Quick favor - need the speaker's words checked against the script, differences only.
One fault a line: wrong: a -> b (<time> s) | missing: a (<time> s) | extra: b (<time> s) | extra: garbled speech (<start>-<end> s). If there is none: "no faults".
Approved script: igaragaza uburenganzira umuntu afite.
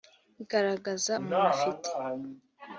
missing: uburenganzira (1.1 s)